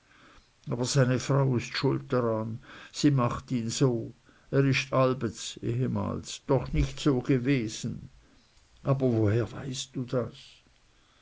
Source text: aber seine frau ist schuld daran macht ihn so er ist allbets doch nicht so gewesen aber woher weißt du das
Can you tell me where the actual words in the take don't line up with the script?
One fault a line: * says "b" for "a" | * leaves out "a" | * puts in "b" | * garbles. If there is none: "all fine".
* puts in "sie"